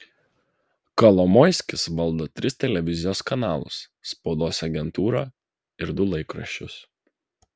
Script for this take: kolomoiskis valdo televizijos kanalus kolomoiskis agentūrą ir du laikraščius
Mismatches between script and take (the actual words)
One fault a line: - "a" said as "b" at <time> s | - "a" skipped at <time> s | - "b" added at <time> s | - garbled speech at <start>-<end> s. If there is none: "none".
- "tris" added at 2.4 s
- "kolomoiskis" said as "spaudos" at 4.1 s